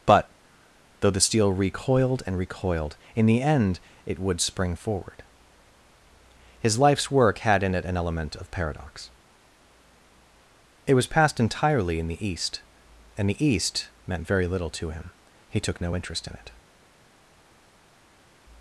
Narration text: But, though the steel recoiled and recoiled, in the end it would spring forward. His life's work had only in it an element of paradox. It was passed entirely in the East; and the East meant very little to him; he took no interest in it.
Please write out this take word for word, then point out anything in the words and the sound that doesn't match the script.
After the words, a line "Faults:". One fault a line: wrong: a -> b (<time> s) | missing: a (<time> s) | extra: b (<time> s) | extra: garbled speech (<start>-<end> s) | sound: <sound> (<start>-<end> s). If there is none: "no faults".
But, though the steel recoiled and recoiled, in the end it would spring forward. His life's work had in it an element of paradox. It was passed entirely in the East; and the East meant very little to him; he took no interest in it.
Faults:
missing: only (7.6 s)